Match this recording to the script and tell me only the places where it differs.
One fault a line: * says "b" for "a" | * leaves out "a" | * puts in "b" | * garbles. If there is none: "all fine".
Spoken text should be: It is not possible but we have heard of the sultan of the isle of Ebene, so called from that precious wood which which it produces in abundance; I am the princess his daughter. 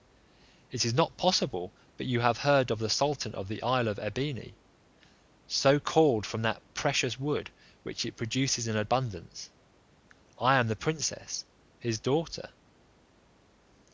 * says "you" for "we"
* leaves out "which"